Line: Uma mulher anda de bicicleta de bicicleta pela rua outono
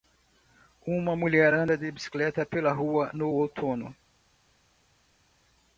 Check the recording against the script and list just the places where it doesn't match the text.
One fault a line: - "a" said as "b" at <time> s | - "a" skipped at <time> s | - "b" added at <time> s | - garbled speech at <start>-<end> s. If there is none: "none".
- "de bicicleta" skipped at 2.5 s
- "no" added at 3.1 s